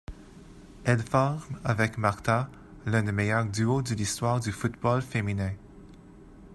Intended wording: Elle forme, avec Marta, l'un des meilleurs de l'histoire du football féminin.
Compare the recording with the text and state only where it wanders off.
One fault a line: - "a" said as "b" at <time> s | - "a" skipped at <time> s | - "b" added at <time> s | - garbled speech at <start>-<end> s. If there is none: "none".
- "duos" added at 3.5 s